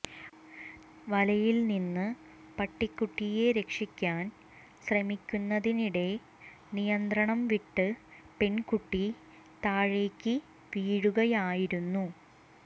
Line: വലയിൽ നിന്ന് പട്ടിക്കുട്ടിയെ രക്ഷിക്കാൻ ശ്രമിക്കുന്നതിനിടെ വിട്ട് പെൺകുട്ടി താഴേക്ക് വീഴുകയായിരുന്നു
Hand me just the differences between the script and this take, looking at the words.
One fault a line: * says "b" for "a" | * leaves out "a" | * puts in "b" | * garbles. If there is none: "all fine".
* puts in "നിയന്ത്രണം"